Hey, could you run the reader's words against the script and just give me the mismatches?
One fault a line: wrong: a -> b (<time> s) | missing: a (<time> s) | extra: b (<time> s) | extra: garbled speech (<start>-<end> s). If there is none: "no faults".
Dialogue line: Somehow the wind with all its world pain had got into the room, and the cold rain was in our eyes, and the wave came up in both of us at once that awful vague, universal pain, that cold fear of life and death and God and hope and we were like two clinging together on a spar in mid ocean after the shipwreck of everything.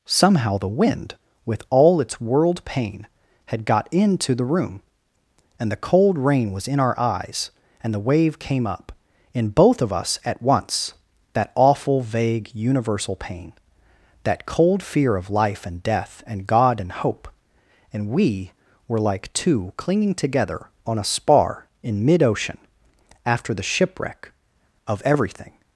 no faults